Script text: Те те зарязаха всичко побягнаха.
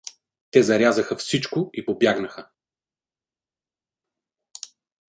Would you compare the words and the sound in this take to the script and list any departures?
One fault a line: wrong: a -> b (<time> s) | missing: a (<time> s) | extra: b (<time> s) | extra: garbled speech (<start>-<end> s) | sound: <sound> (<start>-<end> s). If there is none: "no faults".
missing: те (0.6 s)
extra: и (1.7 s)